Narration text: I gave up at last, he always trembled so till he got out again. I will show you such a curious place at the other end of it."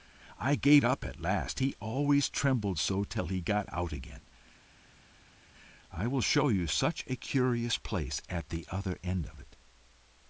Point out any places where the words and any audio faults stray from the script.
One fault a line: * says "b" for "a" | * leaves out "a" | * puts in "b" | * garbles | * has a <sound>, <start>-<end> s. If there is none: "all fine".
all fine